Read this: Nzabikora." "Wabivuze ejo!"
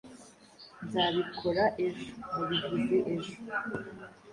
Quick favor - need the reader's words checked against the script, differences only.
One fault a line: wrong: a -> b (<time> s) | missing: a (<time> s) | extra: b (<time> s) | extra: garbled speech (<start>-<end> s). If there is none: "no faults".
extra: ejo (1.9 s)